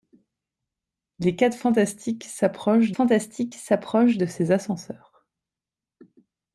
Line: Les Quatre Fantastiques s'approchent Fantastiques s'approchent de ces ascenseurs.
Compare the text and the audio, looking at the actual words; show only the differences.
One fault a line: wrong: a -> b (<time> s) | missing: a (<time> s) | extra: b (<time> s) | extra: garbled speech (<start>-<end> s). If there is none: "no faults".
no faults